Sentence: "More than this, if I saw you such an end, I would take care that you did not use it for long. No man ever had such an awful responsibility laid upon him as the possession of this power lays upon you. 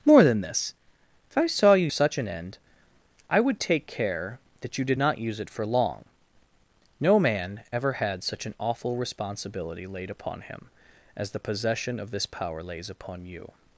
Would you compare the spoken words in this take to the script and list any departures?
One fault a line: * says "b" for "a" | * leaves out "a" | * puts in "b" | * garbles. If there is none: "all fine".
all fine